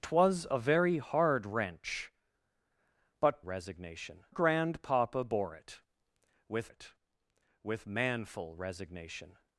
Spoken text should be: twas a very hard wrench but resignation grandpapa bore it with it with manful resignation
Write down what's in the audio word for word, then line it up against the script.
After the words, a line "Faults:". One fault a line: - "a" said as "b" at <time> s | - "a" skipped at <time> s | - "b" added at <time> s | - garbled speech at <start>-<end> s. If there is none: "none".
twas a very hard wrench but resignation grandpapa bore it with it with manful resignation
Faults:
none